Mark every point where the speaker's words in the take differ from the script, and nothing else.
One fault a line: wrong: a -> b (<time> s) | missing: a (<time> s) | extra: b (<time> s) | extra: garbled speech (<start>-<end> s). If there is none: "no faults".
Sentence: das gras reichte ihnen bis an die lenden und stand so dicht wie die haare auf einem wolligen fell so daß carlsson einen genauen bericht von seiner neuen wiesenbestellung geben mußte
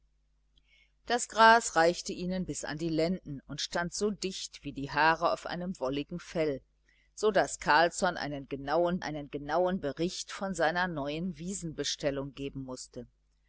extra: einen genauen (9.0 s)